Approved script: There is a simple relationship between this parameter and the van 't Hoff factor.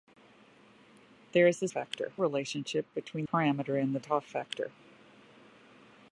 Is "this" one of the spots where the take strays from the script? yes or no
yes